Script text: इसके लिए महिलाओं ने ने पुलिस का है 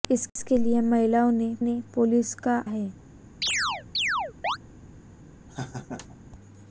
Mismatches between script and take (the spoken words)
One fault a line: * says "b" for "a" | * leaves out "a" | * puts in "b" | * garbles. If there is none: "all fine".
all fine